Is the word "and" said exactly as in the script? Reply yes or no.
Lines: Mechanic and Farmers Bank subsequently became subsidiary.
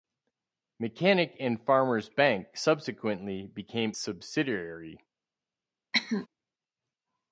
yes